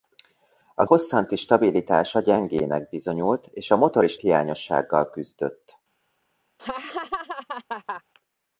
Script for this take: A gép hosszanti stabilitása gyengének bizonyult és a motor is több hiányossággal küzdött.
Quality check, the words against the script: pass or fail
fail